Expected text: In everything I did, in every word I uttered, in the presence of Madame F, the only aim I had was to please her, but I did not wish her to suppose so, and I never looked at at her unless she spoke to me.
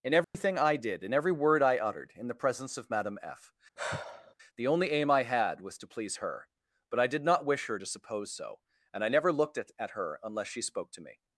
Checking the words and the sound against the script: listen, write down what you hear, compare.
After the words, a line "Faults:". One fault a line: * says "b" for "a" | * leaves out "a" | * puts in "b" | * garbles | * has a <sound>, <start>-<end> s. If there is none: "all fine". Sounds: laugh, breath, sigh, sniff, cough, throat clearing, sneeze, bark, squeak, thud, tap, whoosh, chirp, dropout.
In everything I did, in every word I uttered, in the presence of Madame F, the only aim I had was to please her, but I did not wish her to suppose so, and I never looked at at her unless she spoke to me.
Faults:
* has a dropout, 0.2-0.3 s
* has a sigh, 3.8-4.3 s